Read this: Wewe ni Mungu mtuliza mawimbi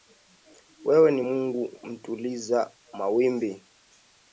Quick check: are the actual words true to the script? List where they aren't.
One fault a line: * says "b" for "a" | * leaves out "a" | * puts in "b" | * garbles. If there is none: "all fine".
all fine